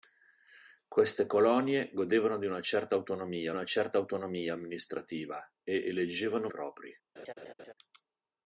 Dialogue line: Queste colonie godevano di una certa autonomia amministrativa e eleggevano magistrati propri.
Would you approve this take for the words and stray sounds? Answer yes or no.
no